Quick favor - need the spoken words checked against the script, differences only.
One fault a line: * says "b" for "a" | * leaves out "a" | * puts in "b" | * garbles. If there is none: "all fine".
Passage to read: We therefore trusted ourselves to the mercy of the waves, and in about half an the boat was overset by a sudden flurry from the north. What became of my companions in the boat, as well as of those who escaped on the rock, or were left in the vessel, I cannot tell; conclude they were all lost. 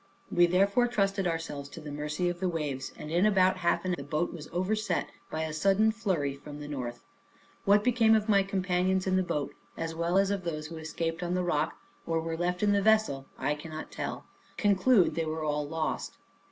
all fine